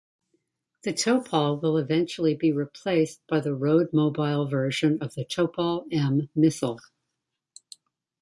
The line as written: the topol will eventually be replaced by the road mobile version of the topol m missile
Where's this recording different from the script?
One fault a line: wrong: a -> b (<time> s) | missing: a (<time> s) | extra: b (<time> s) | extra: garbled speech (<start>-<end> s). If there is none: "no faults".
no faults